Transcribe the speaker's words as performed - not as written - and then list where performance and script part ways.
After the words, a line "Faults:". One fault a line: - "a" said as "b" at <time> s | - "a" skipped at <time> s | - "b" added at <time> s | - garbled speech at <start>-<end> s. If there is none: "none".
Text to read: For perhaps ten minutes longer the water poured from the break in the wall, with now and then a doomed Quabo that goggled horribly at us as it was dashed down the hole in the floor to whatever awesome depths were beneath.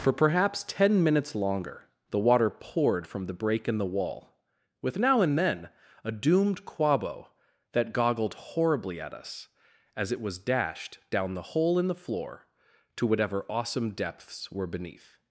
For perhaps ten minutes longer the water poured from the break in the wall, with now and then a doomed Quabo that goggled horribly at us as it was dashed down the hole in the floor to whatever awesome depths were beneath.
Faults:
none